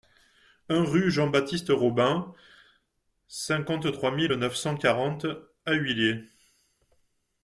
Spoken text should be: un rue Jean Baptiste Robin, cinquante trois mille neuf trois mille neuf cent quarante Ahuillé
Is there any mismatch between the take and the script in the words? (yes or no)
yes